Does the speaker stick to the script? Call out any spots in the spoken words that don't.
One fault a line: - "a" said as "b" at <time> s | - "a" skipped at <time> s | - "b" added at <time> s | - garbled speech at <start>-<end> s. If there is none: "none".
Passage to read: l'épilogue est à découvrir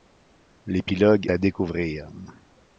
- "est" skipped at 1.3 s